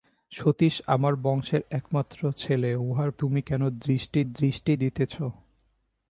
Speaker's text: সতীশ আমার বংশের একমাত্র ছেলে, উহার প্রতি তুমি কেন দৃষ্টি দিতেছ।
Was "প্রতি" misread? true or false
true